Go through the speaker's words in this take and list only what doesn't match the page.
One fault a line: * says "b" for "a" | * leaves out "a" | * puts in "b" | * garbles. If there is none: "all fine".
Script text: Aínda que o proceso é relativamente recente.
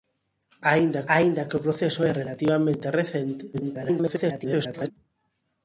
* puts in "aínda"
* garbles